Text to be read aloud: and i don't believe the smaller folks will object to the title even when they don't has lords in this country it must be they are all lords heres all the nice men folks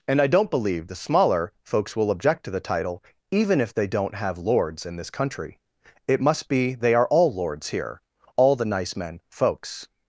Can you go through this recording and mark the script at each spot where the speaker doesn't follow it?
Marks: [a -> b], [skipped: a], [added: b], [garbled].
and i don't believe the smaller folks will object to the title even [when -> if] they don't [has -> have] lords in this country it must be they are all lords [heres -> here] all the nice men folks